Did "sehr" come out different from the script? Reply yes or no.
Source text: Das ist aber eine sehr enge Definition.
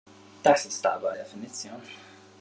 yes